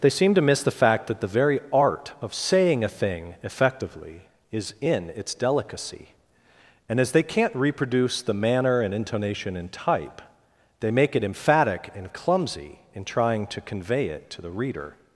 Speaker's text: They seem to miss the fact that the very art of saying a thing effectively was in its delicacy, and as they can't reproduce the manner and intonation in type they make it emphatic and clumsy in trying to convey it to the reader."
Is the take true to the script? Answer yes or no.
no